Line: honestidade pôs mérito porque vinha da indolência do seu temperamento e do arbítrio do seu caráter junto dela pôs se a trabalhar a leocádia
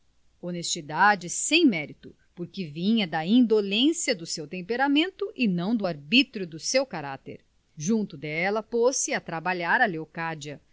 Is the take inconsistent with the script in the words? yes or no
yes